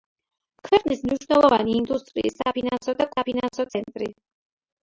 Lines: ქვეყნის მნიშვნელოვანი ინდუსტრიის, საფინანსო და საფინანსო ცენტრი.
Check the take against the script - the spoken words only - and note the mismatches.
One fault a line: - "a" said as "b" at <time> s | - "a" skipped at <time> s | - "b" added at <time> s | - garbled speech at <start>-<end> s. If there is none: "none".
none